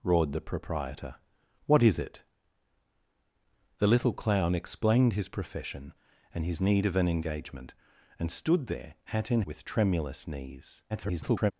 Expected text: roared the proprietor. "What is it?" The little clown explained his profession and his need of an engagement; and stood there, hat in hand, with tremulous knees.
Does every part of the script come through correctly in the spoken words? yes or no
no